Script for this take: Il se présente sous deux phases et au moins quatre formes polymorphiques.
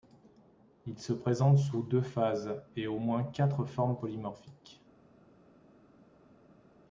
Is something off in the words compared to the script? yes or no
no